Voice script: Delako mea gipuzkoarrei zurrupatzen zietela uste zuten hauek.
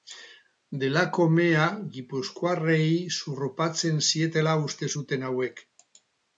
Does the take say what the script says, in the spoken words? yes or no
yes